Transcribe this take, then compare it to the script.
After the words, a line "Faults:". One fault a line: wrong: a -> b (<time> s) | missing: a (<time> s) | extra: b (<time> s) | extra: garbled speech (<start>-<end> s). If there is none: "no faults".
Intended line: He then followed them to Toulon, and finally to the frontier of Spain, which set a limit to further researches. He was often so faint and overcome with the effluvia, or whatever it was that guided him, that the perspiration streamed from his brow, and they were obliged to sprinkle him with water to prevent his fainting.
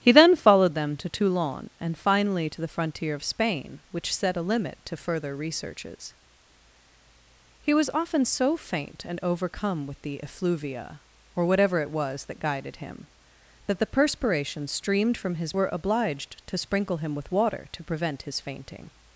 He then followed them to Toulon, and finally to the frontier of Spain, which set a limit to further researches. He was often so faint and overcome with the effluvia, or whatever it was that guided him, that the perspiration streamed from his were obliged to sprinkle him with water to prevent his fainting.
Faults:
missing: brow and they (15.5 s)